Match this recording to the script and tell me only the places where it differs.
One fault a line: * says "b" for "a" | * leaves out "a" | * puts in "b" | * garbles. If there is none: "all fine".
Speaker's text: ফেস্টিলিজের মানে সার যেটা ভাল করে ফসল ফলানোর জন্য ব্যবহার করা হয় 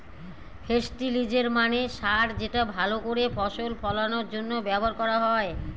all fine